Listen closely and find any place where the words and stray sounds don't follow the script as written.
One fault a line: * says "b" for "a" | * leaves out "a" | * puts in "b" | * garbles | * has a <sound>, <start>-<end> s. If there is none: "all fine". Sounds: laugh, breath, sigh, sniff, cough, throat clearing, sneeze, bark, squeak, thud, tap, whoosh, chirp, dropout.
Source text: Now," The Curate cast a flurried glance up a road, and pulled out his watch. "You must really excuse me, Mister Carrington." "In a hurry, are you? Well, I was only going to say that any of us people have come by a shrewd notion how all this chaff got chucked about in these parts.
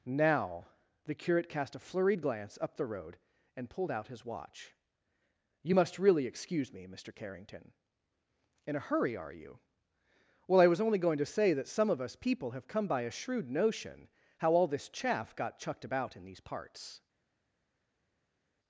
* says "the" for "a"
* says "some" for "any"